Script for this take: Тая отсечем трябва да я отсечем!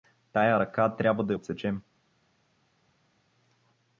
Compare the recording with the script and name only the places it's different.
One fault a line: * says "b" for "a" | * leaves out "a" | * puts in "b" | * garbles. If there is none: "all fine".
* says "ръка" for "отсечем"